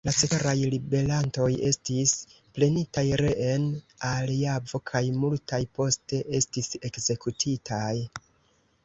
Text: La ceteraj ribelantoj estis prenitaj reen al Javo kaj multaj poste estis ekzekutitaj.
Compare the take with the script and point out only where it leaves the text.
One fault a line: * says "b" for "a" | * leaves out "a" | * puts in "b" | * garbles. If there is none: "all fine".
all fine